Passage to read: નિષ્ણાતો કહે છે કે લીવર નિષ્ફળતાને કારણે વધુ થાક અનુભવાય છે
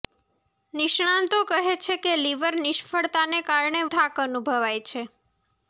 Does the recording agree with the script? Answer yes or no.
no